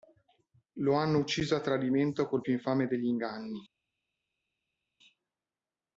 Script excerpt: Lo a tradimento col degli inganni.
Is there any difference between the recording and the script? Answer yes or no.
yes